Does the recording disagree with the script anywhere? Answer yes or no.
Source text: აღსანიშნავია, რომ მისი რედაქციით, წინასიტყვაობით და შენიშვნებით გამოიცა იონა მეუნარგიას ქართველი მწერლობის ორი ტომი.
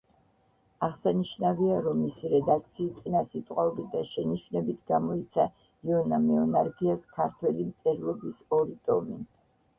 no